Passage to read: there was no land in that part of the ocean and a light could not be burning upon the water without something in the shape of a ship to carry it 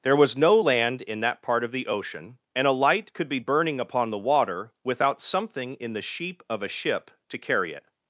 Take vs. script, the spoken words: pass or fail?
fail